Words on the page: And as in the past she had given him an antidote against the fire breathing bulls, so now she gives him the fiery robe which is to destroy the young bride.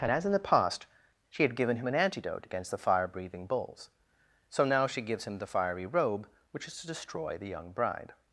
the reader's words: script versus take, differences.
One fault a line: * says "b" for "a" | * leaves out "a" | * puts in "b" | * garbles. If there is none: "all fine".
all fine